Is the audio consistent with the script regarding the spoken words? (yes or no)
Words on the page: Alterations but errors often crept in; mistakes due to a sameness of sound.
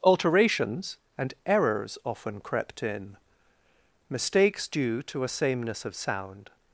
no